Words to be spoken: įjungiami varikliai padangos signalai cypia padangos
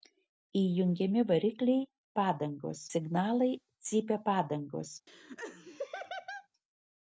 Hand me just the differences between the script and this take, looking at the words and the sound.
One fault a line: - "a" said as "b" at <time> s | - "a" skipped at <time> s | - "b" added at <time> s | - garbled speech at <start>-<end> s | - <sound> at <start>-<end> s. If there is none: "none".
- laugh at 5.1-6.5 s